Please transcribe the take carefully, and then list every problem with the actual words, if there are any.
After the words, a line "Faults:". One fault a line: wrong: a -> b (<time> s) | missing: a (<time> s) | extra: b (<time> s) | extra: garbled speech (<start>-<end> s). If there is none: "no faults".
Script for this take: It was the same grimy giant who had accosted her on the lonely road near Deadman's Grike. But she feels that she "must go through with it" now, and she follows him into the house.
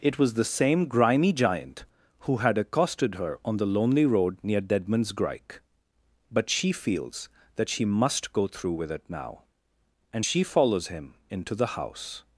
It was the same grimy giant who had accosted her on the lonely road near Deadman's Grike. But she feels that she "must go through with it" now, and she follows him into the house.
Faults:
no faults